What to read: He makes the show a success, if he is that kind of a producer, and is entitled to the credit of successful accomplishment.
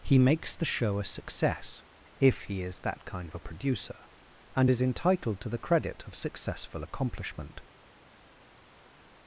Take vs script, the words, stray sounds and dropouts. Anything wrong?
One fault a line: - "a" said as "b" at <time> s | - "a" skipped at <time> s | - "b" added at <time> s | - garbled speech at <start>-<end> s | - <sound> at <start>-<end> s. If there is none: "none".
none